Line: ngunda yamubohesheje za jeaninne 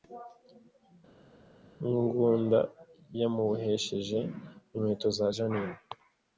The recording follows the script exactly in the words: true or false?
false